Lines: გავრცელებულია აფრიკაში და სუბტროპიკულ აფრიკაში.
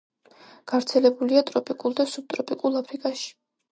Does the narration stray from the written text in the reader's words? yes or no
yes